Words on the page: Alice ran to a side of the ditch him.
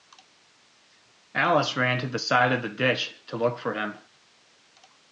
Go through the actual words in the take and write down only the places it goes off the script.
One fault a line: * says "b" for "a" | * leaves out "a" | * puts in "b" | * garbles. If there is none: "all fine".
* says "the" for "a"
* puts in "to look for"